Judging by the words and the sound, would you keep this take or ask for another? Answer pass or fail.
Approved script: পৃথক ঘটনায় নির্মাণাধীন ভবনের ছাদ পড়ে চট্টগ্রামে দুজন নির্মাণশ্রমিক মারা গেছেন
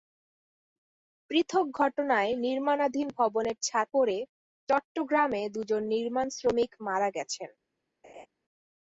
fail